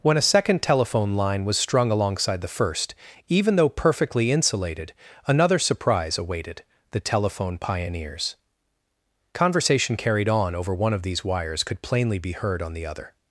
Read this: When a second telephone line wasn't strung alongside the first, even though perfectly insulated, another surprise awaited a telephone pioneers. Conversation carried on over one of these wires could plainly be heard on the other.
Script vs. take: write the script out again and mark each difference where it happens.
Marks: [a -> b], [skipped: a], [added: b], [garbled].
When a second telephone line [wasn't -> was] strung alongside the first, even though perfectly insulated, another surprise awaited [a -> the] telephone pioneers. Conversation carried on over one of these wires could plainly be heard on the other.